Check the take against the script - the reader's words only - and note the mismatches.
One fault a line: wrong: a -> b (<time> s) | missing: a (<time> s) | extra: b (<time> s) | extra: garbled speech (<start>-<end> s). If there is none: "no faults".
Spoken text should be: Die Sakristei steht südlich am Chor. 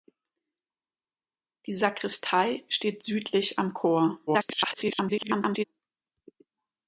extra: garbled speech (4.3-5.6 s)